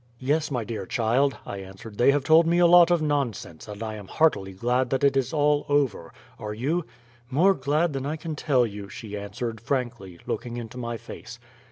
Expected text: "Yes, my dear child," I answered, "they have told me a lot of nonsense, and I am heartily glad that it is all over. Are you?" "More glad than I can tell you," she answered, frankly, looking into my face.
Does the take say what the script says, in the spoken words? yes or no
yes